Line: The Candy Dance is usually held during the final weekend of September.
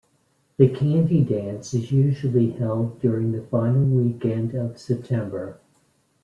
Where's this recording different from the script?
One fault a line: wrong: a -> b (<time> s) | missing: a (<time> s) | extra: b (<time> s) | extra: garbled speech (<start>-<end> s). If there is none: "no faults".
no faults